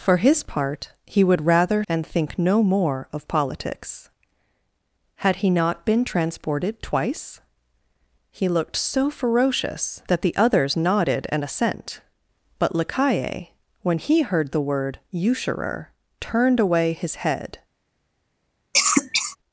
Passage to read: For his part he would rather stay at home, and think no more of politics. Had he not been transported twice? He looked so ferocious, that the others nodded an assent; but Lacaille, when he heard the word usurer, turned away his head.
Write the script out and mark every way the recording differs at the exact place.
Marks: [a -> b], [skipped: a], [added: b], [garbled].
For his part he would rather [skipped: stay at home,] and think no more of politics. Had he not been transported twice? He looked so ferocious, that the others nodded an assent; but Lacaille, when he heard the word usurer, turned away his head.